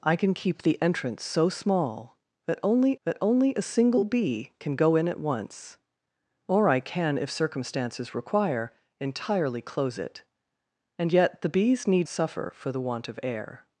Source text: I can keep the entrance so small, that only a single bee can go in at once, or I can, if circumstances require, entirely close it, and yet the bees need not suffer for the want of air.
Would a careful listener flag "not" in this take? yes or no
yes